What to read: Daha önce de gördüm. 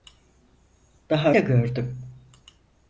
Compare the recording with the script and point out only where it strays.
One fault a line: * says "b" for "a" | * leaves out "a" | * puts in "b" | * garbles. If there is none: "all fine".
* leaves out "önce"